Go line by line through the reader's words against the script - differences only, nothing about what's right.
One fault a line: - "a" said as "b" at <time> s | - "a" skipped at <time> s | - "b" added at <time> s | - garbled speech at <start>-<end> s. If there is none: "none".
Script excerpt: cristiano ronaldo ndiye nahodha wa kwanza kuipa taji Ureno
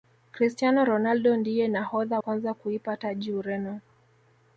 - "wa" skipped at 2.2 s